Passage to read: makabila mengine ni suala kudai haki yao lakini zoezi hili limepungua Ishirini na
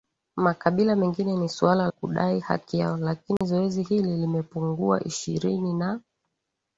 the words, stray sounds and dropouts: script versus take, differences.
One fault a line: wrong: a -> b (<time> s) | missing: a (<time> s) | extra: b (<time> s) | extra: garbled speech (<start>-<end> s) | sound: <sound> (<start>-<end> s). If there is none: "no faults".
sound: dropout (3.4-3.4 s)